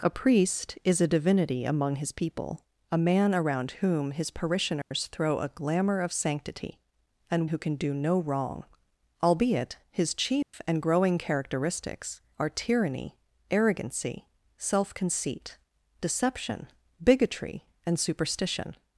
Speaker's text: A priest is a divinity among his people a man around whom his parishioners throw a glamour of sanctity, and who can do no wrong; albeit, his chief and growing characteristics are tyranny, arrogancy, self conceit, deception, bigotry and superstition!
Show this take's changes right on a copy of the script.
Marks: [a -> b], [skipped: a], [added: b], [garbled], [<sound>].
A priest is a divinity among his people a man around whom his parishioners [dropout] throw a glamour of sanctity, and who can do no wrong; albeit, his chief [dropout] and growing characteristics are tyranny, arrogancy, self conceit, deception, bigotry and superstition!